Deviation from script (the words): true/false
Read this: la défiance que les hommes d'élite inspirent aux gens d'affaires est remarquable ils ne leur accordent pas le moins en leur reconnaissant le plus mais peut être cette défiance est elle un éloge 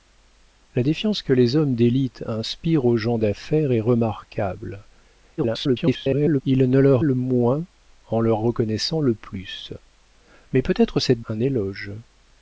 true